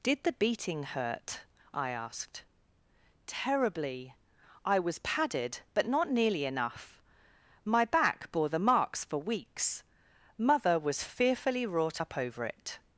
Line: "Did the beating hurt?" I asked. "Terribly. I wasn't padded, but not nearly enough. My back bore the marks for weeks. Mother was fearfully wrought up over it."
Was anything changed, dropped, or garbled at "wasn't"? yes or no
yes